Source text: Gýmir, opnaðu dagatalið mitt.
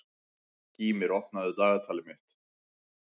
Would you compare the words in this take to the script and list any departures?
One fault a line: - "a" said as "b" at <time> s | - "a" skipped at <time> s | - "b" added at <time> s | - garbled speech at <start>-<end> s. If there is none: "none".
none